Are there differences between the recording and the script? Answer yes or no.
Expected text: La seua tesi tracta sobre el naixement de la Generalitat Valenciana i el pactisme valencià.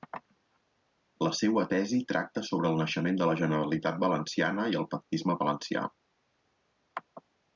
no